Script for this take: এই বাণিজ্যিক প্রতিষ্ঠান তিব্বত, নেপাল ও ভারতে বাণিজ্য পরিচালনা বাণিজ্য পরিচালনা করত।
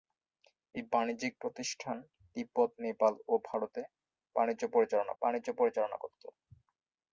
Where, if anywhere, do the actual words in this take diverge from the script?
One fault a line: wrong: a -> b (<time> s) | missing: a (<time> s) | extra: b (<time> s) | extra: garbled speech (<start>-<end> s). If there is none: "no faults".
no faults